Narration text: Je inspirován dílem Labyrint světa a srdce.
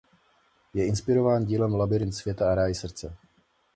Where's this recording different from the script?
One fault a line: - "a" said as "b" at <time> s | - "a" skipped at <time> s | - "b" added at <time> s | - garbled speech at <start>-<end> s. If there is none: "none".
- "ráj" added at 2.5 s